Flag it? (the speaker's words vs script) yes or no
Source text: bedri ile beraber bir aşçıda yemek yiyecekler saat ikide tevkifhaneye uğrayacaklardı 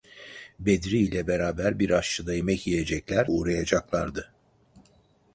yes